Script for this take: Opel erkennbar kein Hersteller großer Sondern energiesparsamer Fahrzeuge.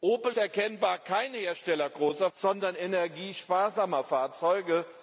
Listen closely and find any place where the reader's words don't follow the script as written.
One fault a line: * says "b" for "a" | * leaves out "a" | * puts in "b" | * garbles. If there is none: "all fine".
all fine